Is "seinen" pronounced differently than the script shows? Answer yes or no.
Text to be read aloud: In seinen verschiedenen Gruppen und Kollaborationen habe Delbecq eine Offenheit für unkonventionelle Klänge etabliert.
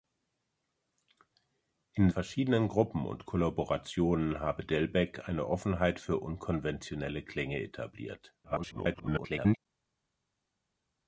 yes